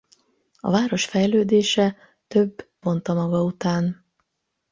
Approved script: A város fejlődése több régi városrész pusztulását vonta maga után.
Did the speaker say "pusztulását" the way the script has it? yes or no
no